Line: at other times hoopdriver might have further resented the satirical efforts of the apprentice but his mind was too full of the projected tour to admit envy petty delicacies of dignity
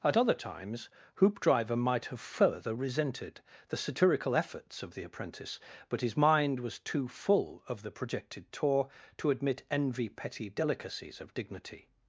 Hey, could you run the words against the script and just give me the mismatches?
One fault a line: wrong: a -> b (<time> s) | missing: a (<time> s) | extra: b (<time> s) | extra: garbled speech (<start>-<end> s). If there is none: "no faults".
no faults